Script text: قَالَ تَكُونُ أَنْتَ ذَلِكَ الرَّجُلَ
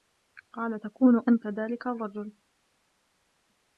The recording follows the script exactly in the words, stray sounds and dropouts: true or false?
true